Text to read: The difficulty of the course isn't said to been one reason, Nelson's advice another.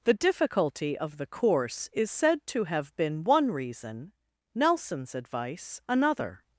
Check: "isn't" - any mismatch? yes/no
yes